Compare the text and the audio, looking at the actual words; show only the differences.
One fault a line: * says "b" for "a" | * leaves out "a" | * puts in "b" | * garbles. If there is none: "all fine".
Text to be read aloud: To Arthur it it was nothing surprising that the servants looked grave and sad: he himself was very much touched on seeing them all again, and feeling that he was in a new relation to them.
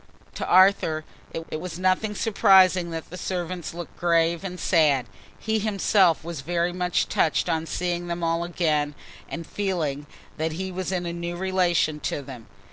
all fine